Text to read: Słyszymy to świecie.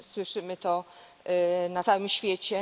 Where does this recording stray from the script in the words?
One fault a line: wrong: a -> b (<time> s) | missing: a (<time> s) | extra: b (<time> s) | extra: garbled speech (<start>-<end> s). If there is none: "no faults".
extra: na całym (1.7 s)